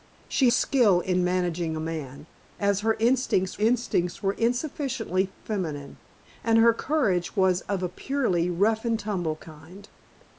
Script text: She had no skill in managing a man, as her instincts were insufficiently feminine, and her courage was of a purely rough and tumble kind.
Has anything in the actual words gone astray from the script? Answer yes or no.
yes